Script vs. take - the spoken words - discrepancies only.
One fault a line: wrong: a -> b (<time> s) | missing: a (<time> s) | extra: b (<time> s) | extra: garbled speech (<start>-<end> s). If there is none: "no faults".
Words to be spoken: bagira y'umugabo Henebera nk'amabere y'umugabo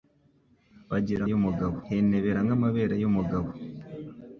no faults